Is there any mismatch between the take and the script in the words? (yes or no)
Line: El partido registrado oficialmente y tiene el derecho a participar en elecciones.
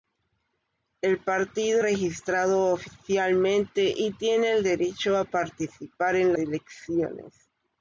no